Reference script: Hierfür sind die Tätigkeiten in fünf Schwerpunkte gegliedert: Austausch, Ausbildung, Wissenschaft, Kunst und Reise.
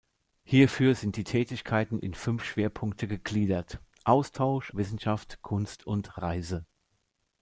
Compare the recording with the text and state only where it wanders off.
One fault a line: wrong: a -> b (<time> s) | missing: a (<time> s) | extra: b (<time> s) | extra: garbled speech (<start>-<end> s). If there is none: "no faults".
missing: Ausbildung (4.7 s)